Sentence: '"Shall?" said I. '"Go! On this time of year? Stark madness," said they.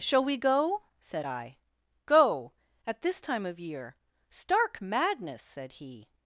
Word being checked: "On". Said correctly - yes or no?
no